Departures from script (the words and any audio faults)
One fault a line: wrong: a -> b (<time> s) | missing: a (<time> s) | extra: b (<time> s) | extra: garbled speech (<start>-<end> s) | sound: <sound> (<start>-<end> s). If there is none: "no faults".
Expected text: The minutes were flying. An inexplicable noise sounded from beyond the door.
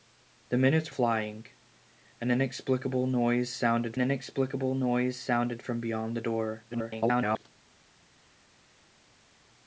missing: were (0.9 s)
extra: inexplicable noise sounded (4.0 s)
extra: garbled speech (6.7-7.4 s)